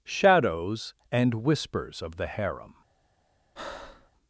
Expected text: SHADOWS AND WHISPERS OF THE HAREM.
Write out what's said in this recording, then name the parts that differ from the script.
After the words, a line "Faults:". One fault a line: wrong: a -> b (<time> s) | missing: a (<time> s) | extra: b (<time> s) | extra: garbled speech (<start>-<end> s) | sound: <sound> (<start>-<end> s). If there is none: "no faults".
SHADOWS AND WHISPERS OF THE HAREM.
Faults:
sound: breath (3.6-4.1 s)